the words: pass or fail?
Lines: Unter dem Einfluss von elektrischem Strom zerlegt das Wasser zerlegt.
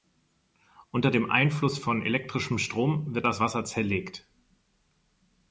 fail